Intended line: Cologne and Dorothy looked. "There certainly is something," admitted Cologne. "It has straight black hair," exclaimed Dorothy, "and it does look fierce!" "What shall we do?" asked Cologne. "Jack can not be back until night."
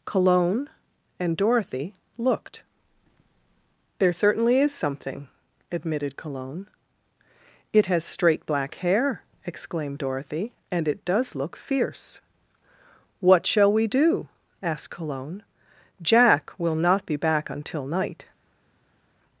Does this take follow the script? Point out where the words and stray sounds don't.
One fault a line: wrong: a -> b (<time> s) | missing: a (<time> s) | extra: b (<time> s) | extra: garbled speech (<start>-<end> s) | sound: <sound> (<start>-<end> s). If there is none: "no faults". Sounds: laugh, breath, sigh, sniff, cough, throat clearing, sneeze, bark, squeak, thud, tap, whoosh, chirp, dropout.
wrong: can -> will (16.6 s)